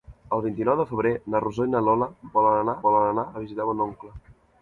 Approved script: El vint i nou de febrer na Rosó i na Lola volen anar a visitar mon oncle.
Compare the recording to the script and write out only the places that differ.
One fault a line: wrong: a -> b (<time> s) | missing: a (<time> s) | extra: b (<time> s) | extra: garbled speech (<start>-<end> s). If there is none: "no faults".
extra: volen anar (2.9 s)